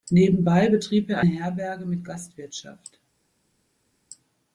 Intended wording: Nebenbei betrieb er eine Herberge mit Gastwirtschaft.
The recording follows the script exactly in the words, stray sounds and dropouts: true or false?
false